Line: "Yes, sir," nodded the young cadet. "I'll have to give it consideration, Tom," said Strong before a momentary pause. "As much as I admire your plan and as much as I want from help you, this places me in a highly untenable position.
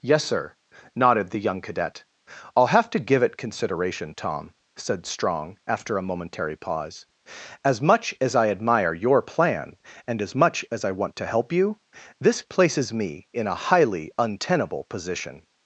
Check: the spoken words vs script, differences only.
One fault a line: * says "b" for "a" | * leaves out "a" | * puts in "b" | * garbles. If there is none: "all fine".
* says "after" for "before"
* says "to" for "from"